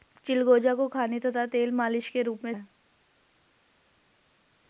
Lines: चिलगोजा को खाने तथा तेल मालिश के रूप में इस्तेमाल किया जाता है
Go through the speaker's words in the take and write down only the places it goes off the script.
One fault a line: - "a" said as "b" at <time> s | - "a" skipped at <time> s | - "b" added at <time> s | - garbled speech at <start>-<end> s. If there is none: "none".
- "इस्तेमाल किया जाता" skipped at 2.5 s